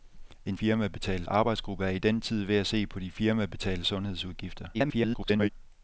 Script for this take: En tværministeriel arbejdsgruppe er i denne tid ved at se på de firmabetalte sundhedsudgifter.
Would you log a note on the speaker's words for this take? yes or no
yes